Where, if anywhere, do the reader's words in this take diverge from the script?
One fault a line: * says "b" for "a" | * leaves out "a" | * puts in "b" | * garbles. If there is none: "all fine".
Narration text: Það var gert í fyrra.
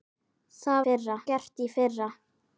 * says "fyrra" for "var"